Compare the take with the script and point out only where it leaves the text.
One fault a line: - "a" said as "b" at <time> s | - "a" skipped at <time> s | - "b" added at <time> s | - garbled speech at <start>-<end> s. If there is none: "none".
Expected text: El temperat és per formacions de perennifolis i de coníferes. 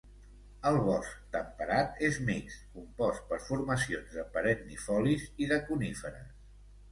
- "bosc" added at 0.8 s
- "mixt compost" added at 2.3 s